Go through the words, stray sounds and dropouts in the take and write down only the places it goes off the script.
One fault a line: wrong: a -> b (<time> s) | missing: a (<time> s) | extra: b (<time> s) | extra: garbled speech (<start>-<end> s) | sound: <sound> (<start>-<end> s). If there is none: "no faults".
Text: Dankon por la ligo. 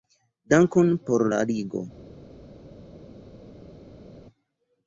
no faults